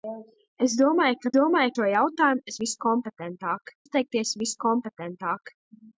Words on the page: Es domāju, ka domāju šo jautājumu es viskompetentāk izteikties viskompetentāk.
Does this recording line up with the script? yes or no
yes